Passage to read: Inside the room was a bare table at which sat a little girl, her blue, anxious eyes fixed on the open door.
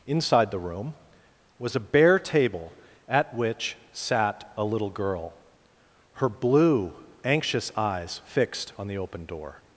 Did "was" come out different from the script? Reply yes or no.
no